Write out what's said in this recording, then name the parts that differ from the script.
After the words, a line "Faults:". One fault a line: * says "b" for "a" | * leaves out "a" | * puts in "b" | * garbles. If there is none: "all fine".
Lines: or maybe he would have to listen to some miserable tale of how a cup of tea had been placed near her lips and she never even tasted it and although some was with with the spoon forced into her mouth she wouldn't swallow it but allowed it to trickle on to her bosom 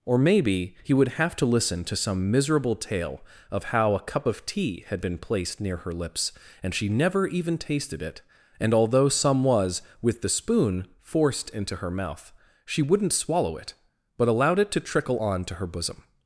or maybe he would have to listen to some miserable tale of how a cup of tea had been placed near her lips and she never even tasted it and although some was with the spoon forced into her mouth she wouldn't swallow it but allowed it to trickle on to her bosom
Faults:
* leaves out "with"